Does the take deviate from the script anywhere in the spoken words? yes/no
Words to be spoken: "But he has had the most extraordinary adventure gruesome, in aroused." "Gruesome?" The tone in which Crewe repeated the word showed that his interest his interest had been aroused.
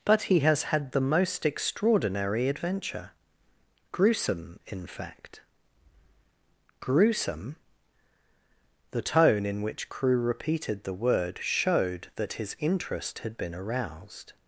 yes